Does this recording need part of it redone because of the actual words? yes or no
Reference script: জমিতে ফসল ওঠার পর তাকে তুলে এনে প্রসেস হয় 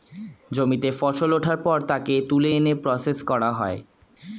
yes